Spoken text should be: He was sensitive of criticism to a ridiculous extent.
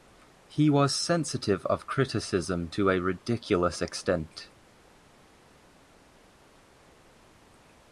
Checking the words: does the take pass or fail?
pass